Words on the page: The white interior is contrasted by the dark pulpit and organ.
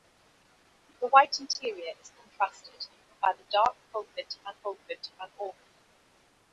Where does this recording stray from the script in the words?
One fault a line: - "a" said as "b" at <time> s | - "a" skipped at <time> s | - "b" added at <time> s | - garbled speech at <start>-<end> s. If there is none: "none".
- "pulpit and" added at 4.6 s